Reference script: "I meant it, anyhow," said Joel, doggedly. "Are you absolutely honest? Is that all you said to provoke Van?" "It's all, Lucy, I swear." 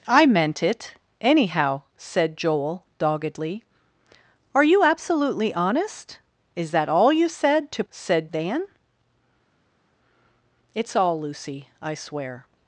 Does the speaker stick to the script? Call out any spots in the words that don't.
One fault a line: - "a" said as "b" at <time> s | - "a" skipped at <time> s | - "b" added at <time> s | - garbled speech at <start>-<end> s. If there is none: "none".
- "provoke" said as "said" at 7.9 s